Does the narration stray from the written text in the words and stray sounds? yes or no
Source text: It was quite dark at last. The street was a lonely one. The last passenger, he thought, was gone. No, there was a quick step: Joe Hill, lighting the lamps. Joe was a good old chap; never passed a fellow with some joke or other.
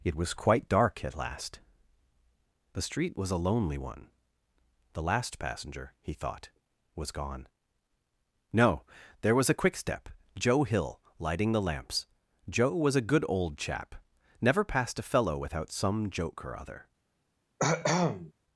yes